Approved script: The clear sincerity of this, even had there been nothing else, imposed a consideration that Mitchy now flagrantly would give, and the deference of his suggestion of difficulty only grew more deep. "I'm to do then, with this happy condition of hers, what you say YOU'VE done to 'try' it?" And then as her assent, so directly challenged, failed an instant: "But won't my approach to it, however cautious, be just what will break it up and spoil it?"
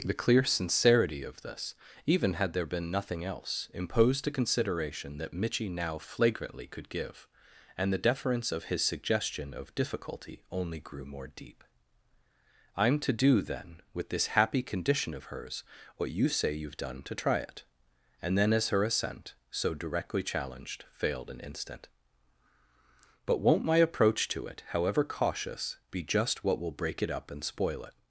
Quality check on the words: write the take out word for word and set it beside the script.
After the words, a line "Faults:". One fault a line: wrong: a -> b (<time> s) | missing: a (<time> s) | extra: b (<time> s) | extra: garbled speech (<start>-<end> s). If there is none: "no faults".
The clear sincerity of this, even had there been nothing else, imposed a consideration that Mitchy now flagrantly could give, and the deference of his suggestion of difficulty only grew more deep. "I'm to do then, with this happy condition of hers, what you say YOU'VE done to 'try' it?" And then as her assent, so directly challenged, failed an instant: "But won't my approach to it, however cautious, be just what will break it up and spoil it?"
Faults:
wrong: would -> could (6.7 s)